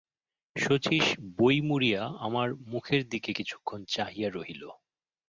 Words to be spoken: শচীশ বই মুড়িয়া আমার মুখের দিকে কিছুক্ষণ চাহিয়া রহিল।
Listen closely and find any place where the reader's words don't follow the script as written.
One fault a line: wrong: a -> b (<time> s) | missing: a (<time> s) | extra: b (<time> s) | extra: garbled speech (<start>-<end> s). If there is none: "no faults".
no faults